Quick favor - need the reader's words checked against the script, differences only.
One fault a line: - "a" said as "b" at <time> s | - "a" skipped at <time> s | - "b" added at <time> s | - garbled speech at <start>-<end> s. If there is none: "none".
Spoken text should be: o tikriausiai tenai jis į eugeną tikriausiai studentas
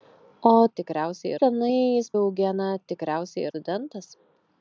none